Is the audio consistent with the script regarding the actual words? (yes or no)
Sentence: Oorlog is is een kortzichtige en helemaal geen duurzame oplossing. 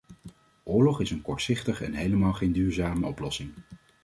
no